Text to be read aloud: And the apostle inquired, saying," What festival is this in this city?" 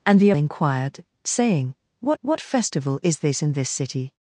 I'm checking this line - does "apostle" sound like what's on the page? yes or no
no